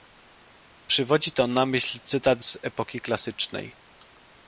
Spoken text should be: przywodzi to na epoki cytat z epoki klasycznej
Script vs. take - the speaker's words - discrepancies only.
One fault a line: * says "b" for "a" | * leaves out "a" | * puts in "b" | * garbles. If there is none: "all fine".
* says "myśl" for "epoki"